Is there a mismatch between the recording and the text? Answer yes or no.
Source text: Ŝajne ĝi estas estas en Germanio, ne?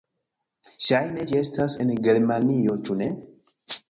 yes